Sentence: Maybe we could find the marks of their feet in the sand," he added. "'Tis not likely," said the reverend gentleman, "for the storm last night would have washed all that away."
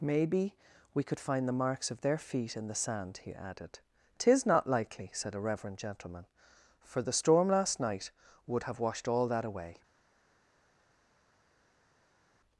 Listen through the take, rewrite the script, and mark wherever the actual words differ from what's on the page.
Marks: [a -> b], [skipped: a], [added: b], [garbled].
Maybe we could find the marks of their feet in the sand," he added. "'Tis not likely," said [the -> a] reverend gentleman, "for the storm last night would have washed all that away."